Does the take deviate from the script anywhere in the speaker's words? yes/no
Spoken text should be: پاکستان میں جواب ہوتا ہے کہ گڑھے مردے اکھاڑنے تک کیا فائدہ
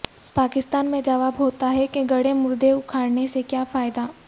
yes